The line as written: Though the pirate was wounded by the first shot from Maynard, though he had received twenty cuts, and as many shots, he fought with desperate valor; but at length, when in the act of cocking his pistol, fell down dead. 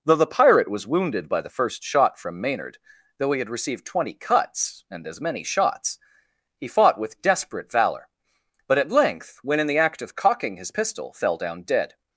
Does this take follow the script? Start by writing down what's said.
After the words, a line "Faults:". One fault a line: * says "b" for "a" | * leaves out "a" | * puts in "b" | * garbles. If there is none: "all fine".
Though the pirate was wounded by the first shot from Maynard, though he had received twenty cuts, and as many shots, he fought with desperate valor; but at length, when in the act of cocking his pistol, fell down dead.
Faults:
all fine